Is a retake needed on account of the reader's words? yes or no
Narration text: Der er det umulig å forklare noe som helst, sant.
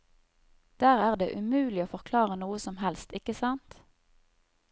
yes